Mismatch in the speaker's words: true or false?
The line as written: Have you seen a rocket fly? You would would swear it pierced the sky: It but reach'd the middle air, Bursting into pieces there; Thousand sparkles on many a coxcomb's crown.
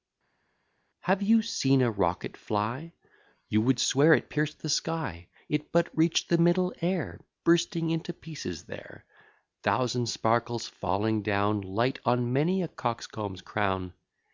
true